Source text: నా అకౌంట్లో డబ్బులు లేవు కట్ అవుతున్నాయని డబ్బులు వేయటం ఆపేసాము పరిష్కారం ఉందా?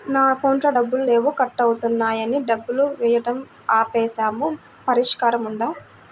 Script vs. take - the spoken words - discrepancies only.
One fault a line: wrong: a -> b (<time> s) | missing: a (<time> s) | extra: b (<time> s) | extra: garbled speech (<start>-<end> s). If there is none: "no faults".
no faults